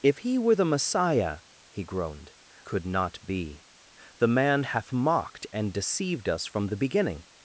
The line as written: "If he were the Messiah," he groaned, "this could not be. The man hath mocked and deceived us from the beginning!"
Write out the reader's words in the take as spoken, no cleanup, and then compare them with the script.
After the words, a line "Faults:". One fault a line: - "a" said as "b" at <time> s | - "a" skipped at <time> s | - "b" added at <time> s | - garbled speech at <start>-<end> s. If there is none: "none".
"If he were the Messiah," he groaned, "could not be. The man hath mocked and deceived us from the beginning!"
Faults:
- "this" skipped at 2.3 s